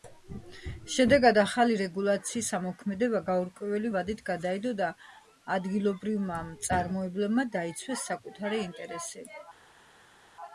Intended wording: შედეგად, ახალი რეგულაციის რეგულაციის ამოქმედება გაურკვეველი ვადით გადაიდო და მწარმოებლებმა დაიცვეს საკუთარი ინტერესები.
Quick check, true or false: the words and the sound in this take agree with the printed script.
false